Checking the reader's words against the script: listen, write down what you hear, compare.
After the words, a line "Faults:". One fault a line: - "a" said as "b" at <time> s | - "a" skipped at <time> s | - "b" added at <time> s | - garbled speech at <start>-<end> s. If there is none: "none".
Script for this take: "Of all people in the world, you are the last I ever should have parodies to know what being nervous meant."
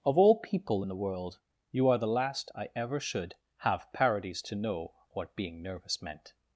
"Of all people in the world, you are the last I ever should have parodies to know what being nervous meant."
Faults:
none